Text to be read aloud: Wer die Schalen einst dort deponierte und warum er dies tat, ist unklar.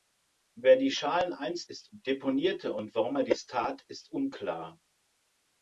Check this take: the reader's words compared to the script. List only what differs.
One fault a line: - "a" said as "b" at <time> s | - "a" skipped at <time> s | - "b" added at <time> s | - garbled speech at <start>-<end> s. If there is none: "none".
- "dort" said as "ist" at 1.6 s